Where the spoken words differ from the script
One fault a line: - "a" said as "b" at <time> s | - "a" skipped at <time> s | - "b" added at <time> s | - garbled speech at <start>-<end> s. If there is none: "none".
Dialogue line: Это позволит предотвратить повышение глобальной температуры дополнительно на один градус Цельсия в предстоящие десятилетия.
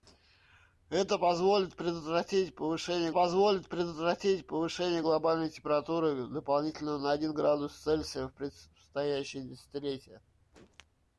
- "позволит предотвратить повышение" added at 3.1 s